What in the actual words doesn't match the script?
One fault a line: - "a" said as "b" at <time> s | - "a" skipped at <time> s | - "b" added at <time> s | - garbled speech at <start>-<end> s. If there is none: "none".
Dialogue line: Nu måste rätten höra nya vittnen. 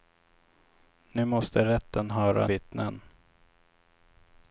- "nya" skipped at 2.5 s